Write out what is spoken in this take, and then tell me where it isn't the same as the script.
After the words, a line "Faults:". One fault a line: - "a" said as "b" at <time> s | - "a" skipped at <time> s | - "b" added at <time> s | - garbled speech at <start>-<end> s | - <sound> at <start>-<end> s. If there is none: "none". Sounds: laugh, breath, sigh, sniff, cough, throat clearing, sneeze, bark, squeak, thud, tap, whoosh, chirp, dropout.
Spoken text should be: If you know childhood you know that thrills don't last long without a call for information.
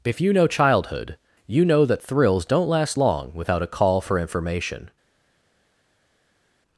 If you know childhood you know that thrills don't last long without a call for information.
Faults:
none